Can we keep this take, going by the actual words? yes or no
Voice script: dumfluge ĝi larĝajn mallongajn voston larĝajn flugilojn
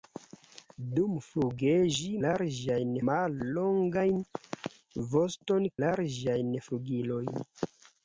yes